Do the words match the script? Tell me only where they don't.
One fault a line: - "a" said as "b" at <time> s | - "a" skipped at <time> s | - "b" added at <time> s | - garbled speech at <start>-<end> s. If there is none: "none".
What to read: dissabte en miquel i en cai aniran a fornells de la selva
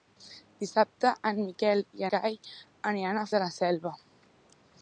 - "en" skipped at 2.1 s
- "fornells" skipped at 3.3 s